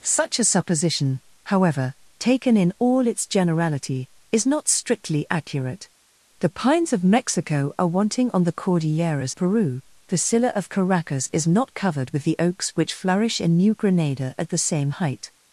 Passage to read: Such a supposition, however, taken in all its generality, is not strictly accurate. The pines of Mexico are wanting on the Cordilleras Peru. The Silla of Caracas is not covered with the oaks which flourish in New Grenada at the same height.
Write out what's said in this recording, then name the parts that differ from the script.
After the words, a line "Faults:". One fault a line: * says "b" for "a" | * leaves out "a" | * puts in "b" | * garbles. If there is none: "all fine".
Such a supposition, however, taken in all its generality, is not strictly accurate. The pines of Mexico are wanting on the Cordilleras Peru. The Silla of Caracas is not covered with the oaks which flourish in New Grenada at the same height.
Faults:
all fine